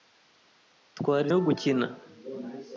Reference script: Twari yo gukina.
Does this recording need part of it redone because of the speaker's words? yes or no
no